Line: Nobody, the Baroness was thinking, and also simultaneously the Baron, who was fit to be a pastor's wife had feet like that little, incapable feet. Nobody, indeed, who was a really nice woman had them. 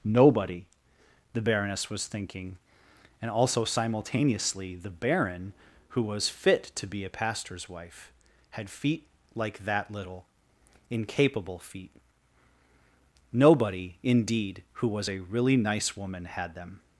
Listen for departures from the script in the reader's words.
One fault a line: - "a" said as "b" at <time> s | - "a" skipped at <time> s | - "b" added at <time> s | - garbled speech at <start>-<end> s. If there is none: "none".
none